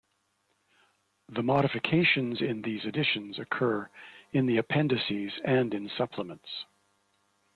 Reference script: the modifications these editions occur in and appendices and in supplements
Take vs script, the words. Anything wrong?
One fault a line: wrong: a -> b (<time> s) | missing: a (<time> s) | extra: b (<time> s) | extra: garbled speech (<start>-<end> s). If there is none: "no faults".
extra: in (2.4 s)
wrong: and -> the (4.5 s)